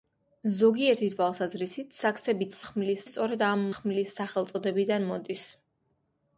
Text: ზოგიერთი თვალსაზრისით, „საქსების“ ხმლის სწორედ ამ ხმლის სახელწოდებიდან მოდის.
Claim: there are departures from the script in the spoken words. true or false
false